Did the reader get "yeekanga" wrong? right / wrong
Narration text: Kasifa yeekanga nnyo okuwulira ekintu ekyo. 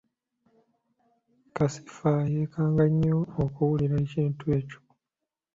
right